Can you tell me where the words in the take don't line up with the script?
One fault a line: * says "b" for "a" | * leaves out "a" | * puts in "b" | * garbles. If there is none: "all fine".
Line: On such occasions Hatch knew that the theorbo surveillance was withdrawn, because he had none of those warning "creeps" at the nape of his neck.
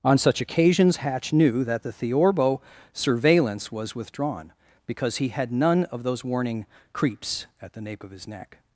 all fine